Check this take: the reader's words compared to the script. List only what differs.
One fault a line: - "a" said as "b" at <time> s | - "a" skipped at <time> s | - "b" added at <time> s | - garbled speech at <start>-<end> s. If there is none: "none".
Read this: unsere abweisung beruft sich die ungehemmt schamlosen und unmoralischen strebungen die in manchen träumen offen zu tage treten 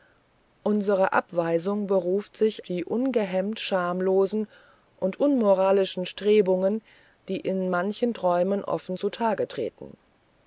none